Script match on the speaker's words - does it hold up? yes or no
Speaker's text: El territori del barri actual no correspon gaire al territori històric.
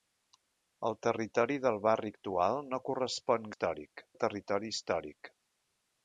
no